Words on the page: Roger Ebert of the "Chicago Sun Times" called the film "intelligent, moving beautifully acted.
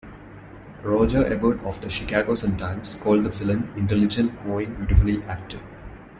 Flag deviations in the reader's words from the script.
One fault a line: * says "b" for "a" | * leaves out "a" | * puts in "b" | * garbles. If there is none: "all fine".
all fine